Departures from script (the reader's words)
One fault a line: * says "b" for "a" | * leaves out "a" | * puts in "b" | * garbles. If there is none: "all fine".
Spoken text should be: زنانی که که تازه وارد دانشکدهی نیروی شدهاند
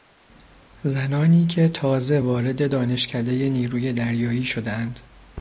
* leaves out "که"
* puts in "دریایی"